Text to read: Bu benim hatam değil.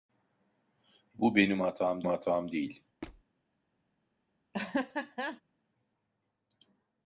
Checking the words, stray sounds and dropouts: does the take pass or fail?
fail